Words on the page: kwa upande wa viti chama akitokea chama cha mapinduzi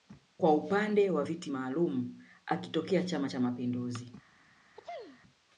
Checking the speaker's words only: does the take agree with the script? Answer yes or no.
no